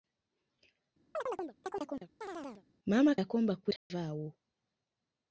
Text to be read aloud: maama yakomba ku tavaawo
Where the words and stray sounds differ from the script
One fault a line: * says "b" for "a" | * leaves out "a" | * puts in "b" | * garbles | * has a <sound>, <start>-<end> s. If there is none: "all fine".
* has a chirp, 1.1-2.6 s
* has a dropout, 3.8-3.9 s